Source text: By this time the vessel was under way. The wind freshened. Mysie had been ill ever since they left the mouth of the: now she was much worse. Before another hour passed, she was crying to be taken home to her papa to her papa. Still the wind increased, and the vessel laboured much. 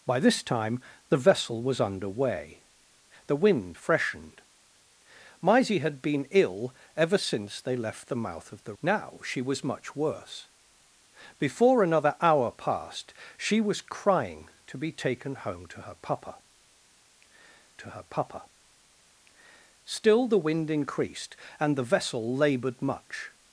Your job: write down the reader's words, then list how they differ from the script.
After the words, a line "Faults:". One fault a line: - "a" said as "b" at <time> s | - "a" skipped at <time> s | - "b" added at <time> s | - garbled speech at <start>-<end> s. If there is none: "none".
By this time the vessel was under way. The wind freshened. Mysie had been ill ever since they left the mouth of the: now she was much worse. Before another hour passed, she was crying to be taken home to her papa to her papa. Still the wind increased, and the vessel laboured much.
Faults:
none